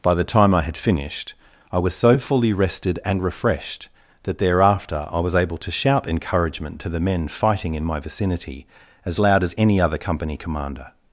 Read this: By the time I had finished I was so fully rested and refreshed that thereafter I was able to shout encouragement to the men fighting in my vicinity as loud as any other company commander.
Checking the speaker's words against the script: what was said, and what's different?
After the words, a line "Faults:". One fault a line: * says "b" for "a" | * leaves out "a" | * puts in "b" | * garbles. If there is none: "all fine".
By the time I had finished I was so fully rested and refreshed that thereafter I was able to shout encouragement to the men fighting in my vicinity as loud as any other company commander.
Faults:
all fine